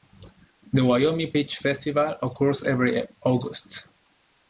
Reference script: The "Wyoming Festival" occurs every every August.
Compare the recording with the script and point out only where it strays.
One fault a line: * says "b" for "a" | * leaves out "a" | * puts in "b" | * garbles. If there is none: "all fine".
* puts in "Peach"
* leaves out "every"